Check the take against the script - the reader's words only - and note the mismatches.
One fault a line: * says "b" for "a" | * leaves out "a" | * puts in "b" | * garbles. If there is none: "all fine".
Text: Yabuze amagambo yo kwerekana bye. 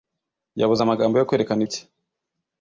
all fine